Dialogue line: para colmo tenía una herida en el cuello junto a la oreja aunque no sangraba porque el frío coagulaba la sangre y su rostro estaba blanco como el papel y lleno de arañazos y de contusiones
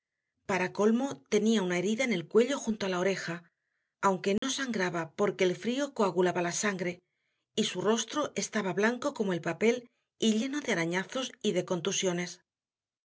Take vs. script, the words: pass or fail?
pass